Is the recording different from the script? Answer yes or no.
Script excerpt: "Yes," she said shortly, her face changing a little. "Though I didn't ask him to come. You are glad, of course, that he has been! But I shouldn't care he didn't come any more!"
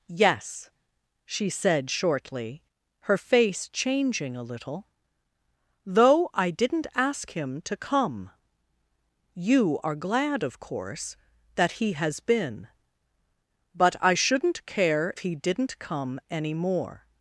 no